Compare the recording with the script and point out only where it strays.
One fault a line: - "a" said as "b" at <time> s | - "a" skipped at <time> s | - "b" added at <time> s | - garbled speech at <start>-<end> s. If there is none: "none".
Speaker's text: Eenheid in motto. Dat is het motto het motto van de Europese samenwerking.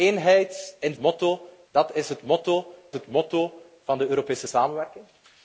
none